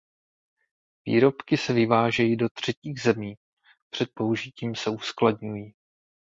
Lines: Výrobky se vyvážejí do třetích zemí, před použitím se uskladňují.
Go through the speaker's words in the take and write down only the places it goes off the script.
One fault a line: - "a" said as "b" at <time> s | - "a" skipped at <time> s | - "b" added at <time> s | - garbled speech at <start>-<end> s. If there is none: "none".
none